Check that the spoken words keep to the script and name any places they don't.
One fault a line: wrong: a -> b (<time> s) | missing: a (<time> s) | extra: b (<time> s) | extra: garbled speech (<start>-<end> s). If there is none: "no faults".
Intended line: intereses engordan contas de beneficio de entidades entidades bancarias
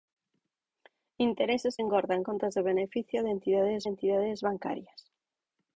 no faults